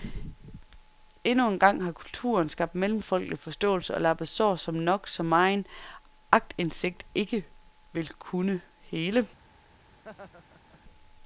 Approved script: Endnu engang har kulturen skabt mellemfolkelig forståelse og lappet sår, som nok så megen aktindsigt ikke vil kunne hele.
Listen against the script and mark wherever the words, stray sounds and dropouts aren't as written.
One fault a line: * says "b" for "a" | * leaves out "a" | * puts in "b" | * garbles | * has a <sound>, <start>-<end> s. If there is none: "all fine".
* has a laugh, 9.9-10.8 s